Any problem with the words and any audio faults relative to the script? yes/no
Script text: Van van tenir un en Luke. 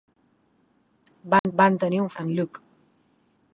yes